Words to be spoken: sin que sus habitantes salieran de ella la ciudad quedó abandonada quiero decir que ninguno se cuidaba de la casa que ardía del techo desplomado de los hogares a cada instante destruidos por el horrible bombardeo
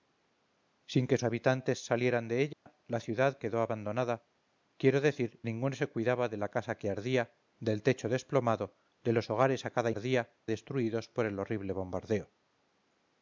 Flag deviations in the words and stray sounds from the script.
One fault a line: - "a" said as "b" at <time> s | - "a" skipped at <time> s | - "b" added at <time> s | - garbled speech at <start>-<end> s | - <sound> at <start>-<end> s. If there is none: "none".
- "sus" skipped at 1.2 s
- dropout at 2.5-2.7 s
- "que" skipped at 5.4 s
- "instante" said as "ardía" at 9.9 s